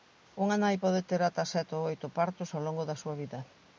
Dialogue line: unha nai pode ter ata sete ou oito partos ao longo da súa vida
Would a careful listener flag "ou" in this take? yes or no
no